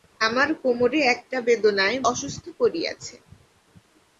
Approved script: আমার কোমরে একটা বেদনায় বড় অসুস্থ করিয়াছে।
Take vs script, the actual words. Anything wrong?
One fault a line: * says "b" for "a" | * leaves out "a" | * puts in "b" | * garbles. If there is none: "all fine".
* leaves out "বড়"